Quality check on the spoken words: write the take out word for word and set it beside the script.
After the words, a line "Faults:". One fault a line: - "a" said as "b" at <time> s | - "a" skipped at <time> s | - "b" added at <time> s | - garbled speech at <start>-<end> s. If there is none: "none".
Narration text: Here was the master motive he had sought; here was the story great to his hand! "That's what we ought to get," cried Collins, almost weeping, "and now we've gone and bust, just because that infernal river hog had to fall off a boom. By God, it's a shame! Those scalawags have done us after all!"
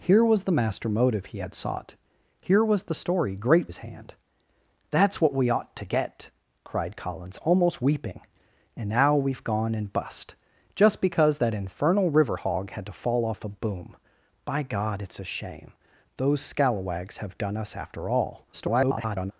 Here was the master motive he had sought; here was the story great his hand! "That's what we ought to get," cried Collins, almost weeping, "and now we've gone and bust, just because that infernal river hog had to fall off a boom. By God, it's a shame! Those scalawags have done us after all!" [garbled]
Faults:
- "to" skipped at 3.7 s
- garbled speech at 18.5-19.3 s